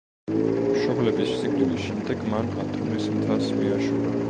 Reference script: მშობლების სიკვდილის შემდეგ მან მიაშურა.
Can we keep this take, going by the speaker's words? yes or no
no